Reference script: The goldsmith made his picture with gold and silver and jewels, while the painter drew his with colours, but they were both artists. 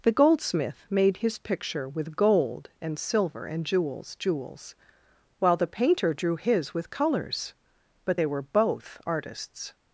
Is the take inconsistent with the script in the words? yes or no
yes